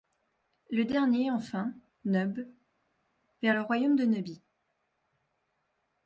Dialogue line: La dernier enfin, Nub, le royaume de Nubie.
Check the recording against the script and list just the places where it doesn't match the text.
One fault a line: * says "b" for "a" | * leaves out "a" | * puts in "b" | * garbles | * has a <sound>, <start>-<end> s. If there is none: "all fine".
* says "Le" for "La"
* puts in "vers"